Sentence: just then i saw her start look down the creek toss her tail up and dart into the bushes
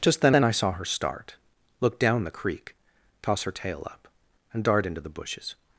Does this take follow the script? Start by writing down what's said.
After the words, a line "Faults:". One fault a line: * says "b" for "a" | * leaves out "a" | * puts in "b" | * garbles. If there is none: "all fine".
just then then i saw her start look down the creek toss her tail up and dart into the bushes
Faults:
* puts in "then"